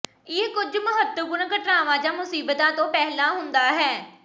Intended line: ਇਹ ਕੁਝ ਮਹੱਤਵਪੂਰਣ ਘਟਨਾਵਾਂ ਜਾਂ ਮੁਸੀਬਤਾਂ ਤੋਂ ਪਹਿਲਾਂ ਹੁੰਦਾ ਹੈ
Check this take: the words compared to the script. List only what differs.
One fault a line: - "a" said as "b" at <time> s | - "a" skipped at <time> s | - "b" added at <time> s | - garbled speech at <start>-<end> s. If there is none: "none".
none